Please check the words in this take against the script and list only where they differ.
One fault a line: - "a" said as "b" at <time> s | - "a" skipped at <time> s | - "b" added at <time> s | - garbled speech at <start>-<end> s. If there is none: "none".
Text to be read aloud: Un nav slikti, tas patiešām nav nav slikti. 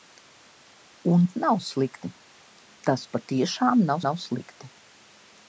none